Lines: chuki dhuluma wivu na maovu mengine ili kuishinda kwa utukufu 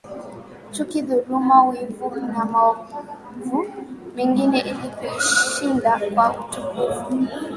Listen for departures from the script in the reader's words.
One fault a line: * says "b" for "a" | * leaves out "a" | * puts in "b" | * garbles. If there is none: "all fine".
all fine